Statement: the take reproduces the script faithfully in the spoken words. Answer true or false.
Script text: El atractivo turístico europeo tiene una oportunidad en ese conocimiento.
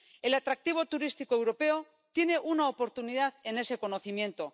true